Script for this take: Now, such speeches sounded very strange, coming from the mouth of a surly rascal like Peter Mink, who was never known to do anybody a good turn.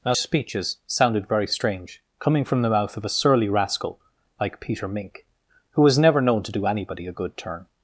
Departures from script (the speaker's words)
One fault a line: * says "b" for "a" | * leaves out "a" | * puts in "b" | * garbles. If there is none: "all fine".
* leaves out "such"